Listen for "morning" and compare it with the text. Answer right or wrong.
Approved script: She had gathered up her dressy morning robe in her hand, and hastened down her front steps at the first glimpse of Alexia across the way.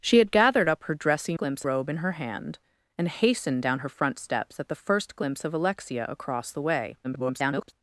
wrong